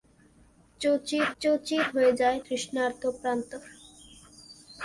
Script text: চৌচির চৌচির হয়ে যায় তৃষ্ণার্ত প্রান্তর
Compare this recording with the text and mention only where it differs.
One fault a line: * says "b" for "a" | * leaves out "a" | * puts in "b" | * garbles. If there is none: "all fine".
all fine